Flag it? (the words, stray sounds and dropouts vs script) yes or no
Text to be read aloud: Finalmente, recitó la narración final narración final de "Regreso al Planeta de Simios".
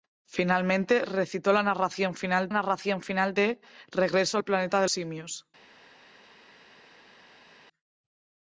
no